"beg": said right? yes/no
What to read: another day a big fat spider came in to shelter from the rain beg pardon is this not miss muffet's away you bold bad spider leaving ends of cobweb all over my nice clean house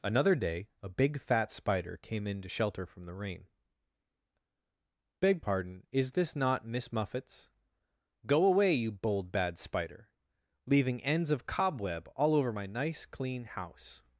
yes